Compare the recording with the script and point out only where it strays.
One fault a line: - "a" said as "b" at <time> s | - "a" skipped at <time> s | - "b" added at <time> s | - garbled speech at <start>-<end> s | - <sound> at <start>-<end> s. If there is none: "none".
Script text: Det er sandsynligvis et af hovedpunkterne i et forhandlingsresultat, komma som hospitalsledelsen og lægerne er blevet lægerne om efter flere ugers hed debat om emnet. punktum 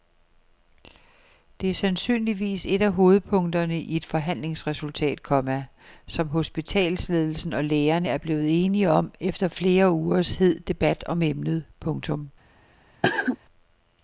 - "lægerne" said as "enige" at 8.6 s
- cough at 13.0-13.4 s